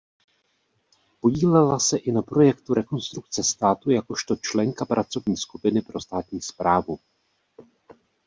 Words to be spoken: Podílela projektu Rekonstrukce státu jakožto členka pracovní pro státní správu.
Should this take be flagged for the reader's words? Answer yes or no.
yes